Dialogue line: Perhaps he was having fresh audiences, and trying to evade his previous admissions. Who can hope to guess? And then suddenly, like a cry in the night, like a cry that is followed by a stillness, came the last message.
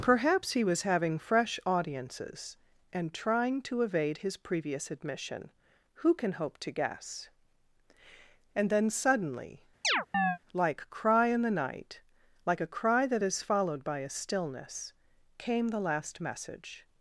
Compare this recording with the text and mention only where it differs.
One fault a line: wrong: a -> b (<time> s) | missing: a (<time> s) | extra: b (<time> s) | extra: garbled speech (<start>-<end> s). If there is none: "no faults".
wrong: admissions -> admission (4.9 s)
missing: a (10.9 s)